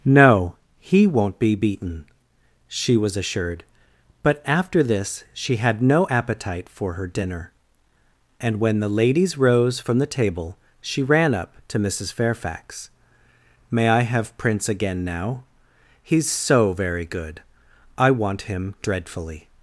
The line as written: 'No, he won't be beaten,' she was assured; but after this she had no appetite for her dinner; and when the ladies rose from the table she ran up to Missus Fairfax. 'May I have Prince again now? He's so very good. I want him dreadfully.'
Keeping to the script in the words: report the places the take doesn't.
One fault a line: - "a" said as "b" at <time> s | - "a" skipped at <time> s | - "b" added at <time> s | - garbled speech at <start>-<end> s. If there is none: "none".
none